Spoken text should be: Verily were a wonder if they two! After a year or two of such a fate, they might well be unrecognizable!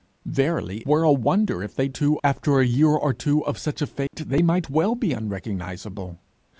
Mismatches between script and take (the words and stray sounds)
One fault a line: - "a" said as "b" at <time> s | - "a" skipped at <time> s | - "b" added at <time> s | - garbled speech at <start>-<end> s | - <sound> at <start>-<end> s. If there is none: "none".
- dropout at 4.1-4.1 s